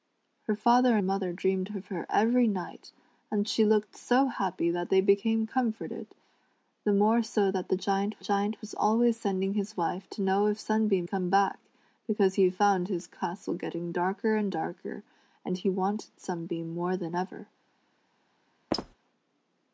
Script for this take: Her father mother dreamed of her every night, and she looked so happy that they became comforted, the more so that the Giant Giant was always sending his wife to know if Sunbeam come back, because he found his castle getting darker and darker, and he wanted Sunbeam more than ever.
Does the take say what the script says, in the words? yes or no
yes